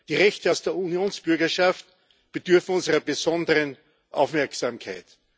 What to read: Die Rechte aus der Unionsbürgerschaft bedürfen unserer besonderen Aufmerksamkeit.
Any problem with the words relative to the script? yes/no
no